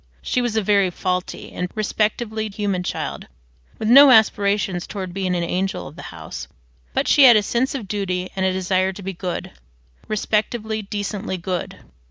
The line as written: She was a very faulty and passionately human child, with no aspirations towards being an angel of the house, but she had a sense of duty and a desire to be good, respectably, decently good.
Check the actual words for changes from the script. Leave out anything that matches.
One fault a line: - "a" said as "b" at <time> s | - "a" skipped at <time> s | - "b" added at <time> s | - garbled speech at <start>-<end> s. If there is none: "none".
- "passionately" said as "respectably" at 1.7 s